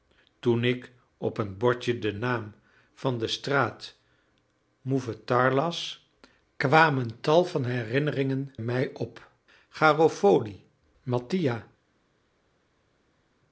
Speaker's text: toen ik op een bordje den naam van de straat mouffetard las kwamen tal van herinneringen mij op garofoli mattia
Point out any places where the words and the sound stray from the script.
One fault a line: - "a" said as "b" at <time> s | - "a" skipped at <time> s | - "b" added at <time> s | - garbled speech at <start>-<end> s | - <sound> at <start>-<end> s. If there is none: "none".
none